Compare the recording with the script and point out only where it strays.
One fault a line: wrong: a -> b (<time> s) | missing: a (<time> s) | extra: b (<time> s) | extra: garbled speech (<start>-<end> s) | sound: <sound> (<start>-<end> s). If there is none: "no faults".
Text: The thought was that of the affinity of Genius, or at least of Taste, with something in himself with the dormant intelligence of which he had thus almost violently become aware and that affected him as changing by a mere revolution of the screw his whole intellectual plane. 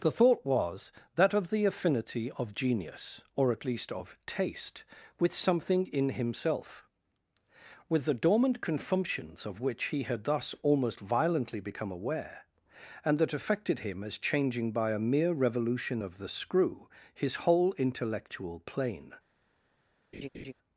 wrong: intelligence -> confumptions (8.6 s)
sound: laugh (20.1-20.5 s)